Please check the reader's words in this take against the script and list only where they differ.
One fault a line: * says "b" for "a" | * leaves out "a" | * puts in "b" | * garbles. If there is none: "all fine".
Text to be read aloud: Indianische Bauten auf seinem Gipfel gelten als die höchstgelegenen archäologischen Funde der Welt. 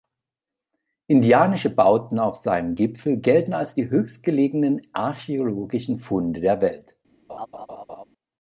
all fine